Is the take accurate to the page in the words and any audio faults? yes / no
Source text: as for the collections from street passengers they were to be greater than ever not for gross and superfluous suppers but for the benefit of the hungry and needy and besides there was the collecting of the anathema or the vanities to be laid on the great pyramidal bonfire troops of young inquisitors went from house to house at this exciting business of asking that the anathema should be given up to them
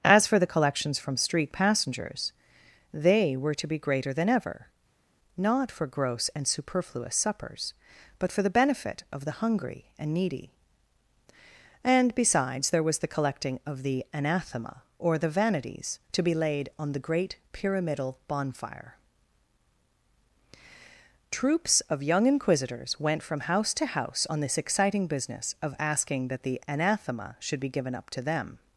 no